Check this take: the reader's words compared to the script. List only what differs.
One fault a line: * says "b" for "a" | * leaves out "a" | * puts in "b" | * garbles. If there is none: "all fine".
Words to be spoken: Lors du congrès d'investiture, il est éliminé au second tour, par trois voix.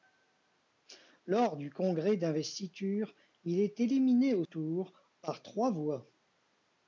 * leaves out "second"